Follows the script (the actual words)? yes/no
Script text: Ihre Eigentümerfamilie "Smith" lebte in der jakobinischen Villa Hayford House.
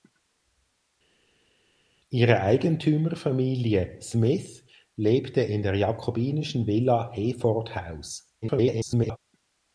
no